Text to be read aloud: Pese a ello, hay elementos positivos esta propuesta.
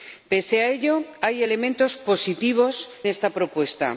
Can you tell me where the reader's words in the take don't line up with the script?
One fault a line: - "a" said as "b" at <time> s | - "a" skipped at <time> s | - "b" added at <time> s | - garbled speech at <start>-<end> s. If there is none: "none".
none